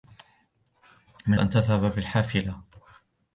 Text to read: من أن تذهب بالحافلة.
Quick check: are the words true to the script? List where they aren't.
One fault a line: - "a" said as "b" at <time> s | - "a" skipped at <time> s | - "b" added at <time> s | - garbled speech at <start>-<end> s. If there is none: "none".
none